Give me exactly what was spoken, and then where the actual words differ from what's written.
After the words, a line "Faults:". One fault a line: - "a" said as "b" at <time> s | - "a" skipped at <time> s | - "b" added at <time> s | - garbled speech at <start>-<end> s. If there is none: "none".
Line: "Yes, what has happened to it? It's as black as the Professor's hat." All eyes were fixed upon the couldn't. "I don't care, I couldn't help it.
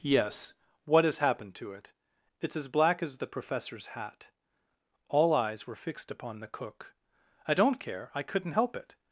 "Yes, what has happened to it? It's as black as the Professor's hat." All eyes were fixed upon the cook. "I don't care, I couldn't help it.
Faults:
- "couldn't" said as "cook" at 6.5 s